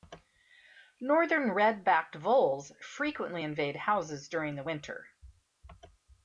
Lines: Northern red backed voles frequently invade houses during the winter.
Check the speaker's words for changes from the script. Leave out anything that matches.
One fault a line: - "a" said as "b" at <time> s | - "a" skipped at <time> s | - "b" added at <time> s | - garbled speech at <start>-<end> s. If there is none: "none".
none